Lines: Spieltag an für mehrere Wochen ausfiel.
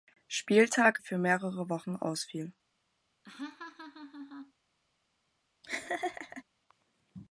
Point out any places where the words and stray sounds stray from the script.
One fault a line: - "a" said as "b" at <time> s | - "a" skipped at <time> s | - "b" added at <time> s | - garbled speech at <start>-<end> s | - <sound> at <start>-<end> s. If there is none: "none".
- "an" skipped at 1.0 s
- laugh at 3.2-4.5 s
- laugh at 5.6-6.4 s